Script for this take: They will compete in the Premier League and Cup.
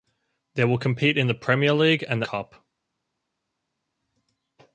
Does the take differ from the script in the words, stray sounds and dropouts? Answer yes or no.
no